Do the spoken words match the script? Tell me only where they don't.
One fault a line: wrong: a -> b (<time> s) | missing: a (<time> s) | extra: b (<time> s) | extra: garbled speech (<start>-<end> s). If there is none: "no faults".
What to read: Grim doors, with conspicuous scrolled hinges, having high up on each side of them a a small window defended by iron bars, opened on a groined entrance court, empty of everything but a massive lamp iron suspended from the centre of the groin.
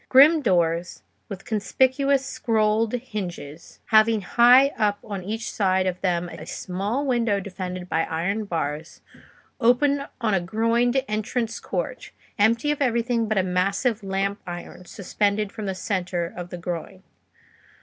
no faults